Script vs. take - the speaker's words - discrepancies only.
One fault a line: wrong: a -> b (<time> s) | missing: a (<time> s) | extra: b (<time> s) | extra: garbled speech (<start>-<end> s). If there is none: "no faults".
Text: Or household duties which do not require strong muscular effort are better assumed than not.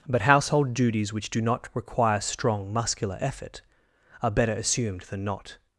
wrong: Or -> But (0.1 s)